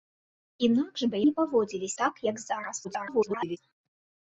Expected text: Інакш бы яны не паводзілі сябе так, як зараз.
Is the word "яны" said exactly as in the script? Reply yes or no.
no